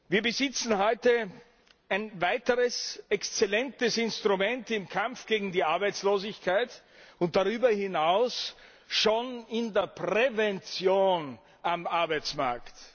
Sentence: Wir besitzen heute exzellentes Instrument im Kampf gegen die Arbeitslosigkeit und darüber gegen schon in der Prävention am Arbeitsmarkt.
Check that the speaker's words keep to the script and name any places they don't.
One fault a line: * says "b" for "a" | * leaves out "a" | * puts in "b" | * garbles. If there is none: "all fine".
* puts in "ein weiteres"
* says "hinaus" for "gegen"